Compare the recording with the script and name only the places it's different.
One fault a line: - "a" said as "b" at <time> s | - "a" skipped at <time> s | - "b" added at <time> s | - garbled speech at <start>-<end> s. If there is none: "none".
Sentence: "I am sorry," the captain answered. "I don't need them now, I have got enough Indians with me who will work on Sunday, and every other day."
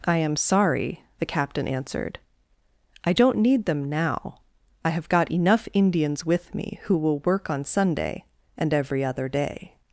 none